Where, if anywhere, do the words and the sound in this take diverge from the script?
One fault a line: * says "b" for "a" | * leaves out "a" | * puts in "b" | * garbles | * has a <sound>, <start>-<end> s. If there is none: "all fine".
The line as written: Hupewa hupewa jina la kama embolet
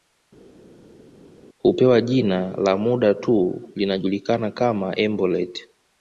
* leaves out "hupewa"
* puts in "muda tu linajulikana"